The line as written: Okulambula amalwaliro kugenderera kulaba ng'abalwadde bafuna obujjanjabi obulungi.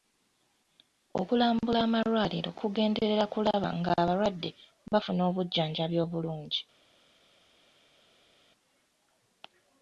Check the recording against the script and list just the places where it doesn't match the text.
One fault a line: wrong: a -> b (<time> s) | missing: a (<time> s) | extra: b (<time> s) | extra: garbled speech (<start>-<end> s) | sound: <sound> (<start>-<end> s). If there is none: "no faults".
no faults